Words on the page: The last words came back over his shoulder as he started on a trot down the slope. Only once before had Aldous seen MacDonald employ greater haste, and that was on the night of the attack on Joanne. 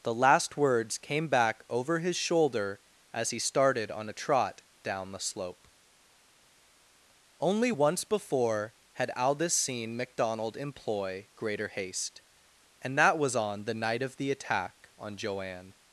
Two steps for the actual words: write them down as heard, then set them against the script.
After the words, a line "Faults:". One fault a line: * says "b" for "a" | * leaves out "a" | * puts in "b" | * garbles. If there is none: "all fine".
The last words came back over his shoulder as he started on a trot down the slope. Only once before had Aldous seen MacDonald employ greater haste, and that was on the night of the attack on Joanne.
Faults:
all fine